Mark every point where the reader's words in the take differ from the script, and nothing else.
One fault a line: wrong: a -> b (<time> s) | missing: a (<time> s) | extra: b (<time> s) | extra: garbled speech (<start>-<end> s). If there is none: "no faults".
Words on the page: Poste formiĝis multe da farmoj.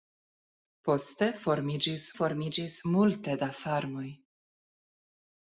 extra: formiĝis (2.2 s)